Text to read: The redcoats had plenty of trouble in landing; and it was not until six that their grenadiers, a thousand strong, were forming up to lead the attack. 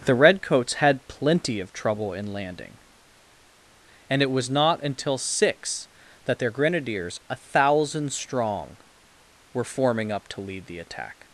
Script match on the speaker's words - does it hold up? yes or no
yes